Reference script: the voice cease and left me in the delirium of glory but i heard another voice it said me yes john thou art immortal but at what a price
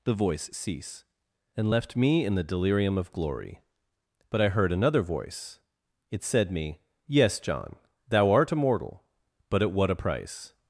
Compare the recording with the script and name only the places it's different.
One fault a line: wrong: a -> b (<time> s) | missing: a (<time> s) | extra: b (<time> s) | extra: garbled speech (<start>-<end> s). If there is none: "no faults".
no faults